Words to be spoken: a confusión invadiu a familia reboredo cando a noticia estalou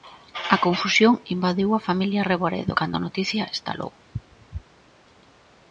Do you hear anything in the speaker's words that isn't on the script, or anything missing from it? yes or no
no